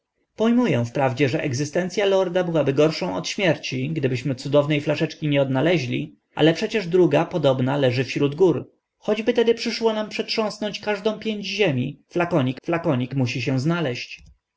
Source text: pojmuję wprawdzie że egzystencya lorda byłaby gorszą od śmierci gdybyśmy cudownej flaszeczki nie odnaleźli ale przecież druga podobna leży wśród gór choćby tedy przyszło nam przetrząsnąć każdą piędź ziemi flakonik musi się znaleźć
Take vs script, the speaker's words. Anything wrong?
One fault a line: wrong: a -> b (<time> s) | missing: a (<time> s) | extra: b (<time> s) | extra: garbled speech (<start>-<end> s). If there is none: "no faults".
extra: flakonik (12.6 s)